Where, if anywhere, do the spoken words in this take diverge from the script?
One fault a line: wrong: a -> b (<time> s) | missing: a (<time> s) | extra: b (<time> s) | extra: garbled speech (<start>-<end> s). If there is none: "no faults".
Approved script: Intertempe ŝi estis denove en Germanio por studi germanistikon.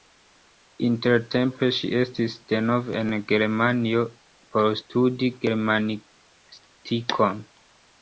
no faults